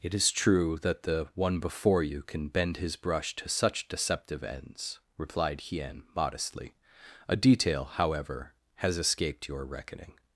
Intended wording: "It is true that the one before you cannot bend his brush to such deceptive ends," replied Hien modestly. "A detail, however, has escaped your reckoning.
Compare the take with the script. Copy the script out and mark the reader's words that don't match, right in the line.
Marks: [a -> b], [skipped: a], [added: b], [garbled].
"It is true that the one before you [cannot -> can] bend his brush to such deceptive ends," replied Hien modestly. "A detail, however, has escaped your reckoning.